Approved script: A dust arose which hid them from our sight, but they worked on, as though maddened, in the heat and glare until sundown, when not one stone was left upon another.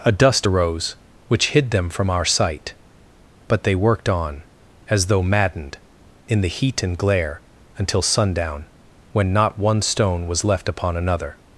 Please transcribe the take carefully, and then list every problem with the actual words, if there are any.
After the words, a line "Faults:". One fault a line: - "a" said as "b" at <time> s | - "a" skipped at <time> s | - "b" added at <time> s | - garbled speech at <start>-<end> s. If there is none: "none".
A dust arose which hid them from our sight, but they worked on, as though maddened, in the heat and glare until sundown, when not one stone was left upon another.
Faults:
none